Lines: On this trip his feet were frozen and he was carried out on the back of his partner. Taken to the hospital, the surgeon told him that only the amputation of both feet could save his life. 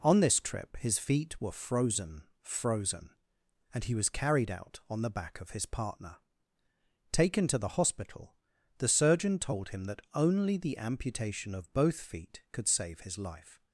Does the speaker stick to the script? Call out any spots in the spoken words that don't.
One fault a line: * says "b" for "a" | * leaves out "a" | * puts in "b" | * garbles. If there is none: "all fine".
* puts in "frozen"